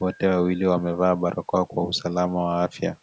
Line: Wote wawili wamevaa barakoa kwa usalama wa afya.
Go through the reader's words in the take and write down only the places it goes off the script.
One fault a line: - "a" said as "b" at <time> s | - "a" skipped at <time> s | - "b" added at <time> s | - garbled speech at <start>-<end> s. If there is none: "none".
none